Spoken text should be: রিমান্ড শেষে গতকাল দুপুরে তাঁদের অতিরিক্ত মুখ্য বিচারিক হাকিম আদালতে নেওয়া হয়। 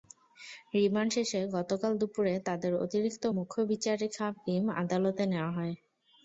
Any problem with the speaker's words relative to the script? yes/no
no